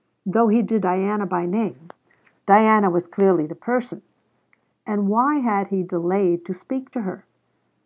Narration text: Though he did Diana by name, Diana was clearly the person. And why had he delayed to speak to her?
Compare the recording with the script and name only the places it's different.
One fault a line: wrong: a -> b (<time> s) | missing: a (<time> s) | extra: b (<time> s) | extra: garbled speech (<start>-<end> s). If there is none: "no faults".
no faults